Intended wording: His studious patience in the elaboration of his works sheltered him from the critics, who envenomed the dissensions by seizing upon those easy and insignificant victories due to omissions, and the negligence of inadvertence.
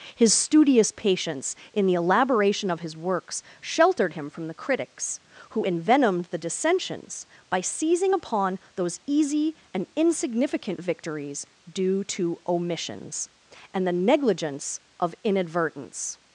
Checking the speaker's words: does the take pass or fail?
pass